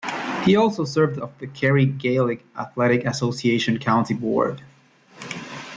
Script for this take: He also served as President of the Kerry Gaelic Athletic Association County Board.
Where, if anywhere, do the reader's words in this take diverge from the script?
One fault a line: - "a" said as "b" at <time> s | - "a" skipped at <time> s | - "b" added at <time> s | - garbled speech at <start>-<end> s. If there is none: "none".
- "as President" skipped at 1.1 s